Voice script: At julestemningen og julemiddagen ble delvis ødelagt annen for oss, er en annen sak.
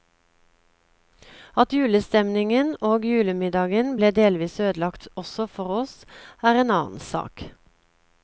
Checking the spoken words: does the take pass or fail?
fail